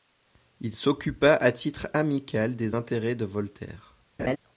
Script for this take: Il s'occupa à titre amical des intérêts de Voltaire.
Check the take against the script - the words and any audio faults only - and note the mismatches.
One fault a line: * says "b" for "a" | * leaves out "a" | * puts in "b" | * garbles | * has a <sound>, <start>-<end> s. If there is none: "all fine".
* has a laugh, 4.2-4.4 s